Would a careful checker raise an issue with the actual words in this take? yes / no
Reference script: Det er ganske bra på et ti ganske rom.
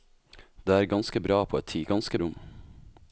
no